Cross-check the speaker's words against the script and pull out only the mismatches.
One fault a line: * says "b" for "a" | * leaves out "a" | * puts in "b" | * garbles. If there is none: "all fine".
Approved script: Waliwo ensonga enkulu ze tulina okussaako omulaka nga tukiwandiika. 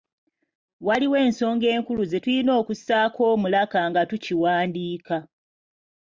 all fine